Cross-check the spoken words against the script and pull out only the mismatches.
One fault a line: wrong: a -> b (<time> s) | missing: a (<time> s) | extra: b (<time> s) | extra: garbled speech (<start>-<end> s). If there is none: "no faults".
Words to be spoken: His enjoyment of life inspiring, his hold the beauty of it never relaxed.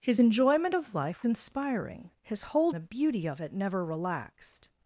no faults